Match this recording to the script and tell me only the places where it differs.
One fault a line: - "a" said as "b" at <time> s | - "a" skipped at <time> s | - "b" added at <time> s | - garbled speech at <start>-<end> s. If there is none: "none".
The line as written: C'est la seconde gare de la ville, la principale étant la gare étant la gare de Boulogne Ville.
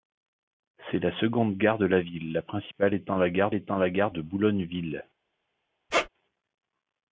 none